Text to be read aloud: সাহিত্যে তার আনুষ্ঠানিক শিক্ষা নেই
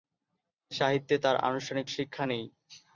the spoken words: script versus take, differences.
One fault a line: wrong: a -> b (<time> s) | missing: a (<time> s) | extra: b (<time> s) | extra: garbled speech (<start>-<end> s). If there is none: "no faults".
no faults